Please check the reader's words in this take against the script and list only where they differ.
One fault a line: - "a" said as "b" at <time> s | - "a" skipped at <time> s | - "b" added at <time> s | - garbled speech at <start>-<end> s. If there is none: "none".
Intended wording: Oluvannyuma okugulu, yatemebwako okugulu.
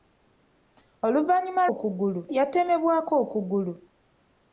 none